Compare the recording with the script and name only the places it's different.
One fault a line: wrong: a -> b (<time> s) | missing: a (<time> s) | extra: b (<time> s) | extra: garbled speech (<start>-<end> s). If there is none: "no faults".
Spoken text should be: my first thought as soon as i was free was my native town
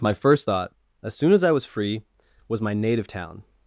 no faults